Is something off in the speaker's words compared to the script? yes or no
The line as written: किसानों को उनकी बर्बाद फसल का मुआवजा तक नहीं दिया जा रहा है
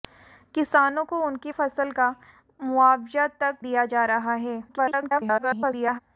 yes